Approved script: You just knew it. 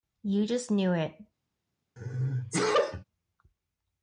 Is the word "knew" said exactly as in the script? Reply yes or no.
yes